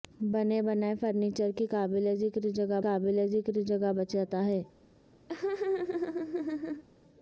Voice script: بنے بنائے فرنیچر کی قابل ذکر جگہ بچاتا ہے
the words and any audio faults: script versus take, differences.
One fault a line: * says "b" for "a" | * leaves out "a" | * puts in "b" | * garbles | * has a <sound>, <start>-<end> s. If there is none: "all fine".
* puts in "قابل ذکر جگہ"
* has a laugh, 5.3-6.8 s